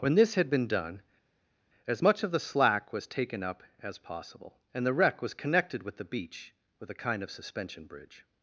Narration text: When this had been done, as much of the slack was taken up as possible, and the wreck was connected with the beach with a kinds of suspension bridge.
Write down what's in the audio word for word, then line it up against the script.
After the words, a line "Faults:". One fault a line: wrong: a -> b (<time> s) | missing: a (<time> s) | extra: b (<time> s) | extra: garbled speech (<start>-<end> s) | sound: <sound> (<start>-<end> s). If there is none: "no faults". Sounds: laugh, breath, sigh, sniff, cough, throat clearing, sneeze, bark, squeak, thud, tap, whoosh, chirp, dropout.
When this had been done, as much of the slack was taken up as possible, and the wreck was connected with the beach with a kind of suspension bridge.
Faults:
wrong: kinds -> kind (6.9 s)